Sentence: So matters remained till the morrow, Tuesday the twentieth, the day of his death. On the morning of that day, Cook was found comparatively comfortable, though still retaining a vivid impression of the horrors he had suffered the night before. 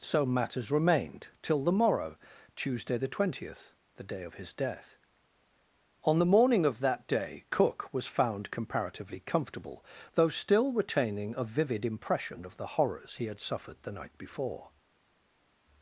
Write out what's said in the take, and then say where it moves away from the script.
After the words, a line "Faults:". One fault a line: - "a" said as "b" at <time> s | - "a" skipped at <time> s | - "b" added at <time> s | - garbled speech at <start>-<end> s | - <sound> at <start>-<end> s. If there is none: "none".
So matters remained till the morrow, Tuesday the twentieth, the day of his death. On the morning of that day, Cook was found comparatively comfortable, though still retaining a vivid impression of the horrors he had suffered the night before.
Faults:
none